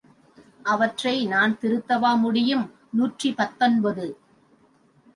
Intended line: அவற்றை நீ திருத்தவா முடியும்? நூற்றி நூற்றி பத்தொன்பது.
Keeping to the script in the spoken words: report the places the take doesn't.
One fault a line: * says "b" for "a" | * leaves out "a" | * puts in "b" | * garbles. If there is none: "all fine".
* says "நான்" for "நீ"
* leaves out "நூற்றி"